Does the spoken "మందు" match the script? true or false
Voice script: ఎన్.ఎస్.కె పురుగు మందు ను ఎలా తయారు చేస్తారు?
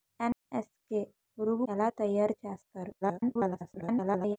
false